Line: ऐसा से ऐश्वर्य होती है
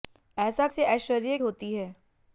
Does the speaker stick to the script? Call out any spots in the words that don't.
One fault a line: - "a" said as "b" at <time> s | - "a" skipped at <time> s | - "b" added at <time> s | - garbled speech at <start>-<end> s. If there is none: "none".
none